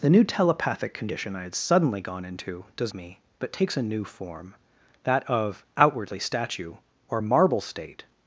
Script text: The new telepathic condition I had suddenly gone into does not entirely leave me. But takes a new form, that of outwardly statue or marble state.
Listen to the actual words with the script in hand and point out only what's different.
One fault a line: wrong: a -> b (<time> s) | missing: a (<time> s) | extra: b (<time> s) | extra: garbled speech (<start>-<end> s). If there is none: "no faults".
missing: not entirely leave (2.9 s)